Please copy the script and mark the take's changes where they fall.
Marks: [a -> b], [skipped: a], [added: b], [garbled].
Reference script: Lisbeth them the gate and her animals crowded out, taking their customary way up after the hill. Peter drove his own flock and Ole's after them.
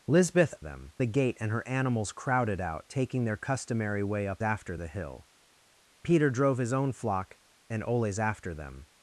Lisbeth them the gate and her animals crowded out, taking their customary way up after the hill. Peter drove his own flock and Ole's after them.